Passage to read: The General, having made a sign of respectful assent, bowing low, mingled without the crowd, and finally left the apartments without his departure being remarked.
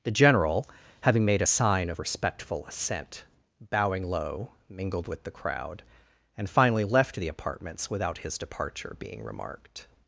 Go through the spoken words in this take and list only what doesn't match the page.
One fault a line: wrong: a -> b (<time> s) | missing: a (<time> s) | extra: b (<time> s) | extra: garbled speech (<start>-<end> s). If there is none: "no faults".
wrong: without -> with (5.1 s)